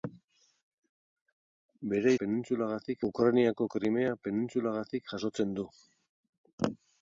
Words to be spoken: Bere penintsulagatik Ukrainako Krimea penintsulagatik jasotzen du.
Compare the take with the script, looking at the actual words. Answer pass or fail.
pass